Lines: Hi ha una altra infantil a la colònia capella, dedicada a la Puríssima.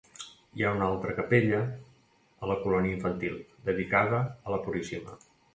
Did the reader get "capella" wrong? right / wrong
wrong